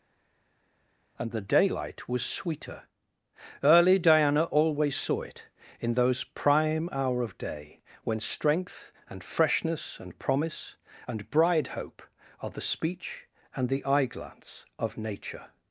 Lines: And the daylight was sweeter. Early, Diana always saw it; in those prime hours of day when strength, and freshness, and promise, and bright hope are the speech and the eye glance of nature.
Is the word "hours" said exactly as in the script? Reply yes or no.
no